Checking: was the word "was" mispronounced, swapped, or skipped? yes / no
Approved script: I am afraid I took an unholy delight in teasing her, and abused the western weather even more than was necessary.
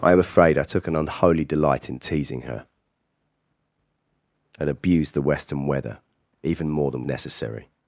yes